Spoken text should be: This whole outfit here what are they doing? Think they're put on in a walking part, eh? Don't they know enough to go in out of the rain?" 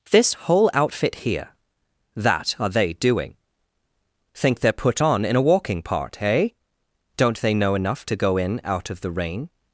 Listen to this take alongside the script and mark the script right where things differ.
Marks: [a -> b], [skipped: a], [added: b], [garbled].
This whole outfit here [what -> that] are they doing? Think they're put on in a walking part, eh? Don't they know enough to go in out of the rain?"